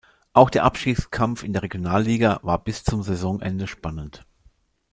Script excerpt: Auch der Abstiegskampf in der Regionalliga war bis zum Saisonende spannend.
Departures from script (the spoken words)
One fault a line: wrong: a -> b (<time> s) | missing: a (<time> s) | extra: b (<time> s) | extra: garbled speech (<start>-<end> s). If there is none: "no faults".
no faults